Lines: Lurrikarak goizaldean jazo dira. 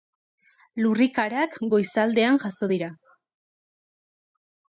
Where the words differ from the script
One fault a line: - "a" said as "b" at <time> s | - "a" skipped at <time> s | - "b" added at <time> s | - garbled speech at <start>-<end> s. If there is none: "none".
none